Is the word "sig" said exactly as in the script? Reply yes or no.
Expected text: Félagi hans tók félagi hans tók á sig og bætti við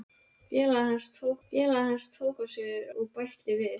yes